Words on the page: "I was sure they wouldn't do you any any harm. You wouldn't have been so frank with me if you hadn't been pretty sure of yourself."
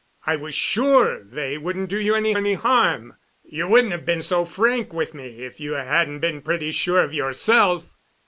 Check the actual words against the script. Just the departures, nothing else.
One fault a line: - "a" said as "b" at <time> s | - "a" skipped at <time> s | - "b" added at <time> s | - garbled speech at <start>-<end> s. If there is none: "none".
none